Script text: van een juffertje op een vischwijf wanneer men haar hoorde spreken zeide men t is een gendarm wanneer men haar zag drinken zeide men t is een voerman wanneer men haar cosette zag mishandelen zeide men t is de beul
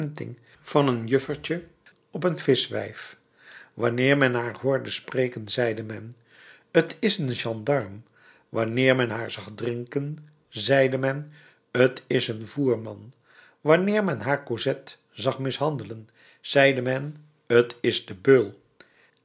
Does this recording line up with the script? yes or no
yes